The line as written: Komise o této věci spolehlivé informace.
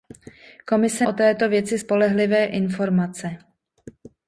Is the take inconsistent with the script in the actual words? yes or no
no